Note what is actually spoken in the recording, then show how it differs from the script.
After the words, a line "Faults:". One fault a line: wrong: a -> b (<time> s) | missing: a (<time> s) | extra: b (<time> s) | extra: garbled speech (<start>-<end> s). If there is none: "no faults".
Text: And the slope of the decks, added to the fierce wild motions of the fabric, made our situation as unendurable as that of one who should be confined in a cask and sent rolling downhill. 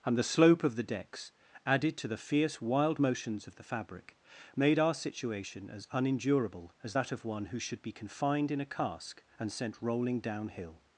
And the slope of the decks, added to the fierce wild motions of the fabric, made our situation as unendurable as that of one who should be confined in a cask and sent rolling downhill.
Faults:
no faults